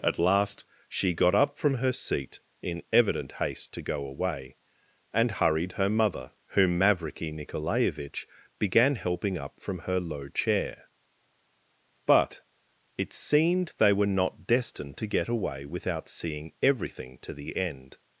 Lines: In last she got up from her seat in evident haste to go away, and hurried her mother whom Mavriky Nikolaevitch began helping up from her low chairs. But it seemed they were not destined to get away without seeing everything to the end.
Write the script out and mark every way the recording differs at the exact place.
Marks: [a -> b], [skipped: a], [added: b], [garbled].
[In -> At] last she got up from her seat in evident haste to go away, and hurried her mother whom Mavriky Nikolaevitch began helping up from her low [chairs. -> chair] But it seemed they were not destined to get away without seeing everything to the end.